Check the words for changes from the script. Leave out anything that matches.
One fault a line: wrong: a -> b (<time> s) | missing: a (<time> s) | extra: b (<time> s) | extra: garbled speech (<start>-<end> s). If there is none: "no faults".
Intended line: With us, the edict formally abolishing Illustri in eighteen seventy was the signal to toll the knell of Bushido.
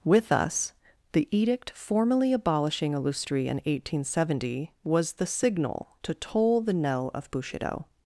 no faults